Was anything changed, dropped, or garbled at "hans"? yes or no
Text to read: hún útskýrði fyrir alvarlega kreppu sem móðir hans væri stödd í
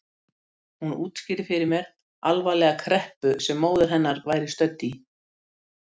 yes